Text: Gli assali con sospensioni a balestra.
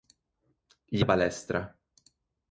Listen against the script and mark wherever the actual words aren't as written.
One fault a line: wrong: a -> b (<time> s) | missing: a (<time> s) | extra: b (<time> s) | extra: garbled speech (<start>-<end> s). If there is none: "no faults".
missing: assali con sospensioni (1.1 s)